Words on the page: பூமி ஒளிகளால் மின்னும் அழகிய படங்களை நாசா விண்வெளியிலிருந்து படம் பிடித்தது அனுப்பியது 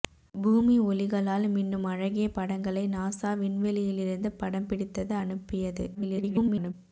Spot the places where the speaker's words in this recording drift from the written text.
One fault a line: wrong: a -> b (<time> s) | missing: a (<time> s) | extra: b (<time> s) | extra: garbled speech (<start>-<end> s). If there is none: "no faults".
extra: garbled speech (5.9-6.7 s)